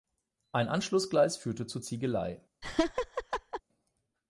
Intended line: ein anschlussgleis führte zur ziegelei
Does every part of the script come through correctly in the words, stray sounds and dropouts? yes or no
no